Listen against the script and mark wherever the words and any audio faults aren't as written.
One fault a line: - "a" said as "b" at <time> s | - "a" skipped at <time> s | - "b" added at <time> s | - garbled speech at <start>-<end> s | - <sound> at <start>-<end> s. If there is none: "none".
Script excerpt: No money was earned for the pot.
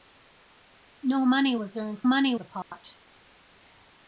- "for" said as "money" at 2.1 s
- dropout at 2.6-2.7 s